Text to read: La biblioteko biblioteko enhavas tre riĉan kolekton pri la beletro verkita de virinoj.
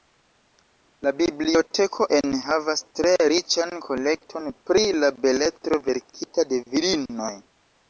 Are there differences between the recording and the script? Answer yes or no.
yes